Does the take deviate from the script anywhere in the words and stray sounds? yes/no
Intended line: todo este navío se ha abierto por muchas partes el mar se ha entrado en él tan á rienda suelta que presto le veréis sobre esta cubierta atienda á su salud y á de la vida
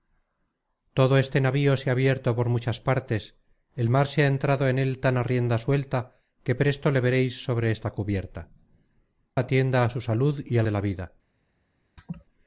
yes